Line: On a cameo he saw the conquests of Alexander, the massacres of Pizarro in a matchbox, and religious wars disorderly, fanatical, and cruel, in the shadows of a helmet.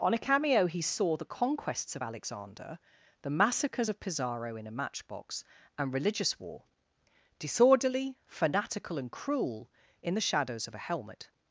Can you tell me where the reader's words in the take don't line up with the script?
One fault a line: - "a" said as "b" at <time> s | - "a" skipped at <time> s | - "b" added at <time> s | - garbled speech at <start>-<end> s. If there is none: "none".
- "wars" said as "war" at 6.4 s